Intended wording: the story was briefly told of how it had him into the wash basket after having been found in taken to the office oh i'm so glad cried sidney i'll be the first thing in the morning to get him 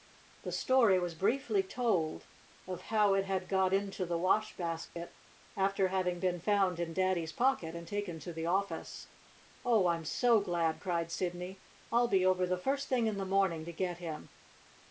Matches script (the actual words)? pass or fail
fail